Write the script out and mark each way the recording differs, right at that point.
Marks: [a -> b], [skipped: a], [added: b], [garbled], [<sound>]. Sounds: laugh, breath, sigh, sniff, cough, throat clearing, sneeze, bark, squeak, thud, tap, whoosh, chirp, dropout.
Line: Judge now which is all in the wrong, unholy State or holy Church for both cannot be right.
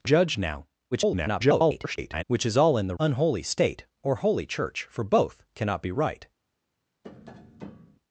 Judge now [garbled] which is all in the [skipped: wrong,] unholy State or holy Church for both cannot be right. [tap]